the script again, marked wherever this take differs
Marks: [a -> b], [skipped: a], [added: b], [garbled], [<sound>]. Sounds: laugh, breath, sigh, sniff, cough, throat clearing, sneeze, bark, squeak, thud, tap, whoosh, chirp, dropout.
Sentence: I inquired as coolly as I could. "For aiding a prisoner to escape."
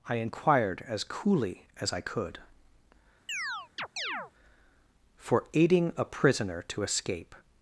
I inquired as coolly as I could. [chirp] "For aiding a prisoner to escape."